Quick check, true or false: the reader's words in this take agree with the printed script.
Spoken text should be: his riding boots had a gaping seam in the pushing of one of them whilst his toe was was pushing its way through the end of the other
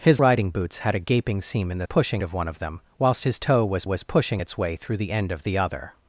true